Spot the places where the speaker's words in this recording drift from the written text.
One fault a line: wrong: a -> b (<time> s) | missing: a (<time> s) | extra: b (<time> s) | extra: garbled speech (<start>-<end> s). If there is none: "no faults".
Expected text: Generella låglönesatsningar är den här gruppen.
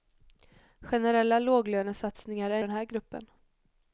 no faults